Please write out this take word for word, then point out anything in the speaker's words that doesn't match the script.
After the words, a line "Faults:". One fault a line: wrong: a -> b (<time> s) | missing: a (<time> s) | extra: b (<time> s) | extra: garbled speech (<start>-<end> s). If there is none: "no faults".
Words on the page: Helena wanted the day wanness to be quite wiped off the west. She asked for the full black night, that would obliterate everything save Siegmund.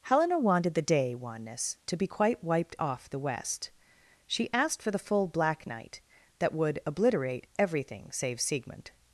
Helena wanted the day wanness to be quite wiped off the west. She asked for the full black night, that would obliterate everything save Siegmund.
Faults:
no faults